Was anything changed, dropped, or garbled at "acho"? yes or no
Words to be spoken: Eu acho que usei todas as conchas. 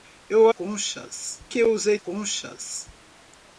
yes